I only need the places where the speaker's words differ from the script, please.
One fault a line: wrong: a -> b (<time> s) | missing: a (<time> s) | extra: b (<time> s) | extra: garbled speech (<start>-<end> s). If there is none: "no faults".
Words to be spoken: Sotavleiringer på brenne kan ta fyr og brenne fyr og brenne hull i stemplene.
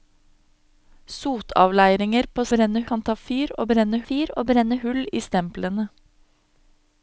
no faults